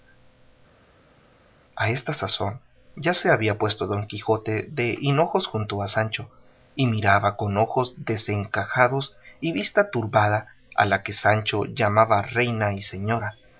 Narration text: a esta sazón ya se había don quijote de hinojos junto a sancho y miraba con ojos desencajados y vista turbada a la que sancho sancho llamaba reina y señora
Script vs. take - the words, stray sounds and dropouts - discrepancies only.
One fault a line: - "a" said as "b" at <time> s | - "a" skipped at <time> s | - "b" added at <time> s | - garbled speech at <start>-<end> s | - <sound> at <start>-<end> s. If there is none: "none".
- "puesto" added at 3.6 s
- "sancho" skipped at 11.6 s